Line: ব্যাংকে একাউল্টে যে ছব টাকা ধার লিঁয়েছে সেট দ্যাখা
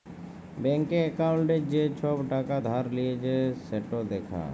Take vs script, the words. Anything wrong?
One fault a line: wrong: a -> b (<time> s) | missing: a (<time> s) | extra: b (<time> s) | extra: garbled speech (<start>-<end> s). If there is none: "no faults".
no faults